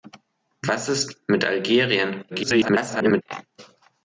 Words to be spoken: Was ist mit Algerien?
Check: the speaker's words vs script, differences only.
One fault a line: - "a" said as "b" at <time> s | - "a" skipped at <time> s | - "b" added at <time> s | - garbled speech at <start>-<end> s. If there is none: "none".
- garbled speech at 2.3-3.2 s